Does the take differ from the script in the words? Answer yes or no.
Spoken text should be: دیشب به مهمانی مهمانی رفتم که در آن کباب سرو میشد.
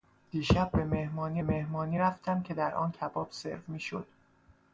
no